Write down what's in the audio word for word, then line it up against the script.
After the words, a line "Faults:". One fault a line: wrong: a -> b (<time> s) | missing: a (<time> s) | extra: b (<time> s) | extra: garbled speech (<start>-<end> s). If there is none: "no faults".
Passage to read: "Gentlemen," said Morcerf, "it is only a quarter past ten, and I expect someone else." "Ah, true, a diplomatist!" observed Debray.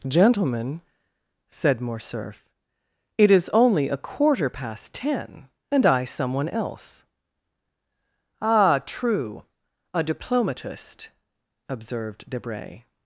"Gentlemen," said Morcerf, "it is only a quarter past ten, and I someone else." "Ah, true, a diplomatist!" observed Debray.
Faults:
missing: expect (6.0 s)